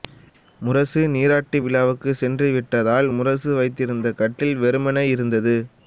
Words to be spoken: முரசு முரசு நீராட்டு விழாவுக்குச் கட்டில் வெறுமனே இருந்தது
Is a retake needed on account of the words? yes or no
yes